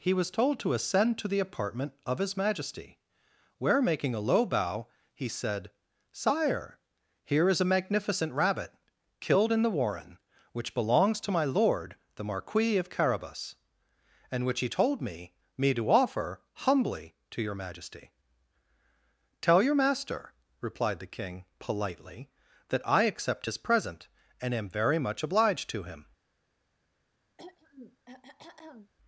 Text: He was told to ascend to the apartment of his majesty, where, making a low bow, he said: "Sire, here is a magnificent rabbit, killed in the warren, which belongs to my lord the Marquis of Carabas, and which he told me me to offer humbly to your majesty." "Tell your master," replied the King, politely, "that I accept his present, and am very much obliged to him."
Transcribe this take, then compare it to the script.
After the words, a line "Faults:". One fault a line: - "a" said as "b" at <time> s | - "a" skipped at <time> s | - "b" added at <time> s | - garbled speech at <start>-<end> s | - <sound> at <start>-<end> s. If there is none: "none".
He was told to ascend to the apartment of his majesty, where, making a low bow, he said: "Sire, here is a magnificent rabbit, killed in the warren, which belongs to my lord the Marquis of Carabas, and which he told me me to offer humbly to your majesty." "Tell your master," replied the King, politely, "that I accept his present, and am very much obliged to him."
Faults:
- throat clearing at 27.4-28.9 s